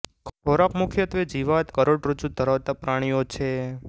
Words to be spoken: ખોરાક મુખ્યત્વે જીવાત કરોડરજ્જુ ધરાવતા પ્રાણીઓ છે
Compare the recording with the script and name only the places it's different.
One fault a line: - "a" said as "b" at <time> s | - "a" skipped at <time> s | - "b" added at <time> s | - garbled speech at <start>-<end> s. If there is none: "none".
none